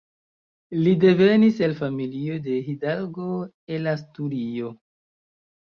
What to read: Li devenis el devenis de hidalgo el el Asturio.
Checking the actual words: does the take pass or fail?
fail